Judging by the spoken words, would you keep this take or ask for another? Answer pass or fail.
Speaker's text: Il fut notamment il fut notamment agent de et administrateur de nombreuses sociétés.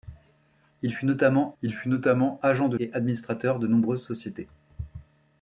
pass